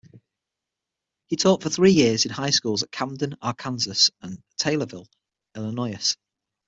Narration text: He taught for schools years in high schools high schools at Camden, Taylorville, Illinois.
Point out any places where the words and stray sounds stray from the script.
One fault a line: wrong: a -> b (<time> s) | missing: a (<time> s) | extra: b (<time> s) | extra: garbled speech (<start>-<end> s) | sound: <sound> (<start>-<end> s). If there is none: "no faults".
wrong: schools -> three (1.7 s)
wrong: high schools at Camden -> at Camden Arkansas and (2.8 s)